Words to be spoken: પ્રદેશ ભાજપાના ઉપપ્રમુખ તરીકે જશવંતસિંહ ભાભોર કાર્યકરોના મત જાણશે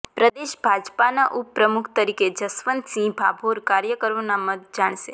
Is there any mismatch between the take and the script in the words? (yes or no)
no